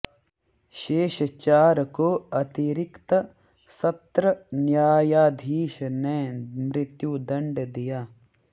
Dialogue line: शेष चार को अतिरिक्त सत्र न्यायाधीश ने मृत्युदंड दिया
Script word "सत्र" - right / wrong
right